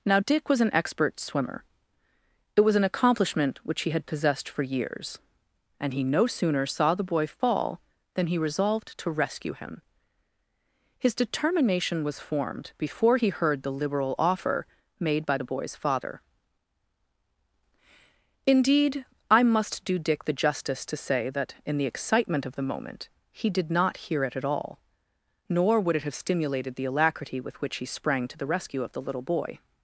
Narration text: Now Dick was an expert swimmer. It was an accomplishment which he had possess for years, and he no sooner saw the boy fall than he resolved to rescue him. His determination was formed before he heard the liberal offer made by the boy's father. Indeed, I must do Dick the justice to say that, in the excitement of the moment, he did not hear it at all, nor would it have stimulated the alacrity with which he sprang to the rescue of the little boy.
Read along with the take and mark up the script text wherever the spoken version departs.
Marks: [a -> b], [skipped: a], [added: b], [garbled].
Now Dick was an expert swimmer. It was an accomplishment which he had [possess -> possessed] for years, and he no sooner saw the boy fall than he resolved to rescue him. His determination was formed before he heard the liberal offer made by the boy's father. Indeed, I must do Dick the justice to say that, in the excitement of the moment, he did not hear it at all, nor would it have stimulated the alacrity with which he sprang to the rescue of the little boy.